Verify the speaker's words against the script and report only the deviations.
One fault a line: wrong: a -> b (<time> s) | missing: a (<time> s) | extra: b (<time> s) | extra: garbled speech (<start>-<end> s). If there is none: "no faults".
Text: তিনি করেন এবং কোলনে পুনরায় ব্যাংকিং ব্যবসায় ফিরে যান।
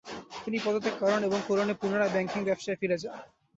extra: পদত্যাগ (0.7 s)